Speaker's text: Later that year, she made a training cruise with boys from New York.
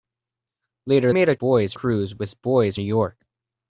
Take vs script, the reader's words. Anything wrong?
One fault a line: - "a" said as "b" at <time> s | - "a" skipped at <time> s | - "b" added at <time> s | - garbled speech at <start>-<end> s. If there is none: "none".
- "that year she" skipped at 1.1 s
- "training" said as "boys" at 1.4 s
- "from" skipped at 2.8 s